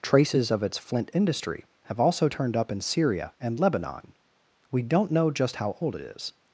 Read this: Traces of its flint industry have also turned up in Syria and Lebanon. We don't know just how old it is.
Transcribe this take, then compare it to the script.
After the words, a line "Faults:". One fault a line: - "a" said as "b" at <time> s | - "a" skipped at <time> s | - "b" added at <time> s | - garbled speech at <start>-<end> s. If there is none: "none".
Traces of its flint industry have also turned up in Syria and Lebanon. We don't know just how old it is.
Faults:
none